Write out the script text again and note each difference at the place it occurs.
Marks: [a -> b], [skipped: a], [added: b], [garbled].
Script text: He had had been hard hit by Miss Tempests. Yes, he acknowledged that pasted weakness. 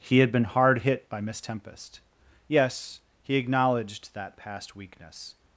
He had [skipped: had] been hard hit by Miss [Tempests. -> Tempest] Yes, he acknowledged that [pasted -> past] weakness.